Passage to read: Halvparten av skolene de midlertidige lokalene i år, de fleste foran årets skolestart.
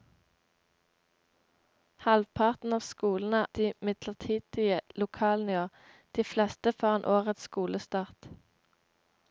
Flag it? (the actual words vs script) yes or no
no